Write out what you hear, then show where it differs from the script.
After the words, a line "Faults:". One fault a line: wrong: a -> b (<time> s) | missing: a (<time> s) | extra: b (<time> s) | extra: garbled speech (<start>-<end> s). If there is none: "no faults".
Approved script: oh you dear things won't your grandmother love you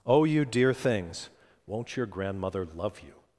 oh you dear things won't your grandmother love you
Faults:
no faults